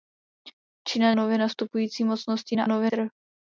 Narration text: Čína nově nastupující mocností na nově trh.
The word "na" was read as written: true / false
true